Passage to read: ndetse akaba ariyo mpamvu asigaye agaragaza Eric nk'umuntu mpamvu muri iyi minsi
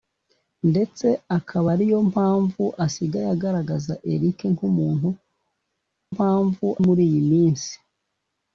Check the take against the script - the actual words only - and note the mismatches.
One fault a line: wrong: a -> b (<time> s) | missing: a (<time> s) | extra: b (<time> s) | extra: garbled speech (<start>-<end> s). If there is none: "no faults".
no faults